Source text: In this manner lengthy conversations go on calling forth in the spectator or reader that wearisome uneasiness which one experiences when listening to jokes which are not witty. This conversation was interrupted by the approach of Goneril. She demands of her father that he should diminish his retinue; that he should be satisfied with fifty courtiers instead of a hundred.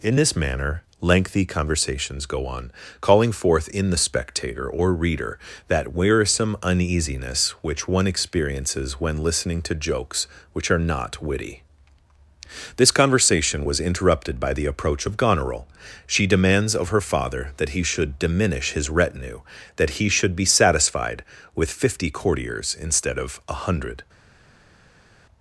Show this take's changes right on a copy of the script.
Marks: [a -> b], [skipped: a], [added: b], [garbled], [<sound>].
In this manner lengthy conversations go on calling forth in the spectator or reader that wearisome uneasiness which one experiences when listening to jokes which are not witty. This conversation was interrupted by the approach of Goneril. She demands of her father that he should diminish his retinue; that he should be satisfied with fifty courtiers instead of a hundred.